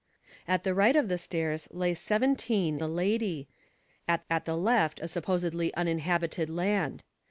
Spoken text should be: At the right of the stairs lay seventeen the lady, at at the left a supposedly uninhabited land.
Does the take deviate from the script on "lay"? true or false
false